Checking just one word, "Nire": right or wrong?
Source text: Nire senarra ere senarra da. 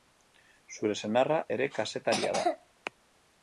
wrong